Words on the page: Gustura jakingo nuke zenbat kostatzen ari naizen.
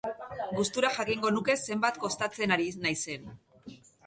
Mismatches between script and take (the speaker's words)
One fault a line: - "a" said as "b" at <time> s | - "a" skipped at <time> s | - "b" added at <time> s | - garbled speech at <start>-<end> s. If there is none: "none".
none